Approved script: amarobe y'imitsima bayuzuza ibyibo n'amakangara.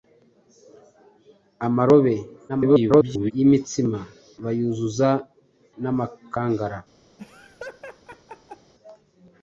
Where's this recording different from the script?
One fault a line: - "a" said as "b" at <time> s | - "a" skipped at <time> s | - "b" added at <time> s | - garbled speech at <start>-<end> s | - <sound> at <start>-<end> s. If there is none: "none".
- garbled speech at 2.5-3.3 s
- "ibyibo" skipped at 5.1 s
- laugh at 7.2-8.7 s